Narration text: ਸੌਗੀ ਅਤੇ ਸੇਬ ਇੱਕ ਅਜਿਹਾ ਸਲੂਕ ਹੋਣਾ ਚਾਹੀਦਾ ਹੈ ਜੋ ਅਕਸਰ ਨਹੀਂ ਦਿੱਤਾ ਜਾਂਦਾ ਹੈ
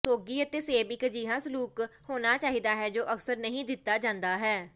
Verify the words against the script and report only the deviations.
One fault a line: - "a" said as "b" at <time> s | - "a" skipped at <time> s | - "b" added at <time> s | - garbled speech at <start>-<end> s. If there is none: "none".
none